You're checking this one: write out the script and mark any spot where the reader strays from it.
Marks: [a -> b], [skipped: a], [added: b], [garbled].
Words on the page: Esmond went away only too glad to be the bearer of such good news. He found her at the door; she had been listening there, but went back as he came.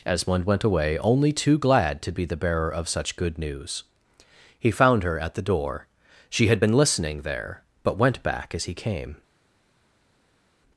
Esmond went away only too glad to be the bearer of such good news. He found her at the door; she had been listening there, but went back as he came.